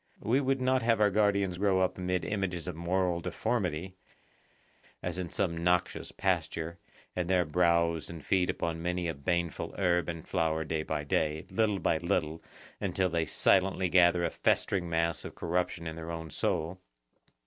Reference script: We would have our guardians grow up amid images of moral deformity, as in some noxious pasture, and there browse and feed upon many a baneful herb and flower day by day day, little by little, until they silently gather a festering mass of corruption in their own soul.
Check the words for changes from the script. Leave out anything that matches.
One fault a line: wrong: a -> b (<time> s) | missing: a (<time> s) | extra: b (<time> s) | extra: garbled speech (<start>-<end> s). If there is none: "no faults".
extra: not (0.6 s)
missing: day (11.5 s)